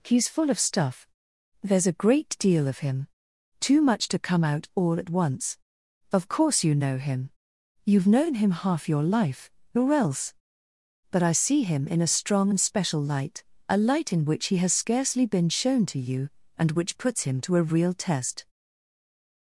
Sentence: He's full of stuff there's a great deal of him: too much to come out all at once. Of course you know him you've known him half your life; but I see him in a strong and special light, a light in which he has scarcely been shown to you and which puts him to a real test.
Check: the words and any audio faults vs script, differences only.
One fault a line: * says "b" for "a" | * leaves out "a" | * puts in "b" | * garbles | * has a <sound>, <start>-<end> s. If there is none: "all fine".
* puts in "or else"